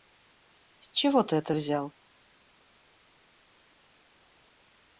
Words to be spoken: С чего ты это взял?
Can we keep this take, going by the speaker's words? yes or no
yes